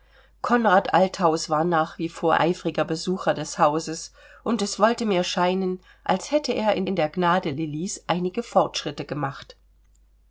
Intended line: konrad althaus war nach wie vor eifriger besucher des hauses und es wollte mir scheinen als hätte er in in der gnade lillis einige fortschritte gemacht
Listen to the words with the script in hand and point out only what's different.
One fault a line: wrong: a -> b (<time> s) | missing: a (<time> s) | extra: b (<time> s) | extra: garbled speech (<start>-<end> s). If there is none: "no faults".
no faults